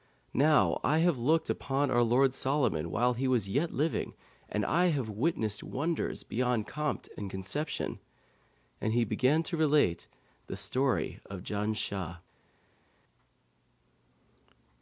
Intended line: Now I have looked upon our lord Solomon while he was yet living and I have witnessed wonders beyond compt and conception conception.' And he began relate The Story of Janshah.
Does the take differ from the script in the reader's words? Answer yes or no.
yes